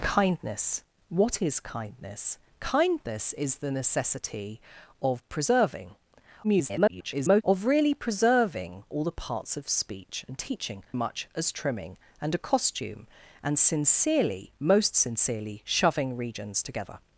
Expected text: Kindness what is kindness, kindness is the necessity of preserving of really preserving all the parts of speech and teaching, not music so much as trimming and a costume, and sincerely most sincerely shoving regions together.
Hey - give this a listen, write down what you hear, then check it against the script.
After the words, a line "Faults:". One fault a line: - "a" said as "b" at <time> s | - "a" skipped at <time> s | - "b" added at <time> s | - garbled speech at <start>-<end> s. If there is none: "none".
Kindness what is kindness, kindness is the necessity of preserving [garbled] of really preserving all the parts of speech and teaching, much as trimming and a costume, and sincerely most sincerely shoving regions together.
Faults:
- garbled speech at 6.4-7.4 s
- "not music so" skipped at 10.8 s